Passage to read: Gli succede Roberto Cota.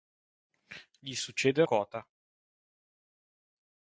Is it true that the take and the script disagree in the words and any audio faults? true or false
true